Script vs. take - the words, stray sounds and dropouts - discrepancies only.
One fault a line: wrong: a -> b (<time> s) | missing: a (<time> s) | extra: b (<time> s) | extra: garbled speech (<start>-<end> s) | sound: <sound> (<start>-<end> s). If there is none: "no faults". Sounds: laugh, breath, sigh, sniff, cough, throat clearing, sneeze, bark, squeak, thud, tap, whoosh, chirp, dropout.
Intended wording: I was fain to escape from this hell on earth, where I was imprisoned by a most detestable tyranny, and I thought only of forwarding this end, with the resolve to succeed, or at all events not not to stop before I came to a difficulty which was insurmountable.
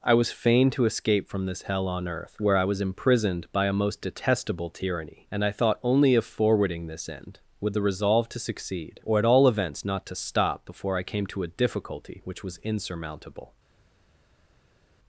missing: not (10.0 s)